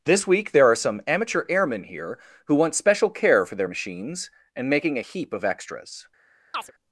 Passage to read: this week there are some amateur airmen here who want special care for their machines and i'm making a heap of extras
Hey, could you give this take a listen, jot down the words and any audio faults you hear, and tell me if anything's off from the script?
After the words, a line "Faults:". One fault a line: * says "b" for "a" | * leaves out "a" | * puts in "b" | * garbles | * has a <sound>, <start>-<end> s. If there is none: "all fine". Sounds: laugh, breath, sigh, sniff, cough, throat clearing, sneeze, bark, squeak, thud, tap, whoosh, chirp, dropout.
this week there are some amateur airmen here who want special care for their machines and making a heap of extras
Faults:
* leaves out "i'm"
* has a chirp, 6.5-6.7 s